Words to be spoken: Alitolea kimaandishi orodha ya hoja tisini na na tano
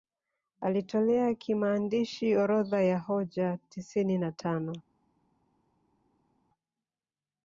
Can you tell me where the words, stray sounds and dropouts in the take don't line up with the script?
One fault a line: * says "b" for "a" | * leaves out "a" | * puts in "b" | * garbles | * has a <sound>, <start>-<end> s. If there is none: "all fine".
* leaves out "na"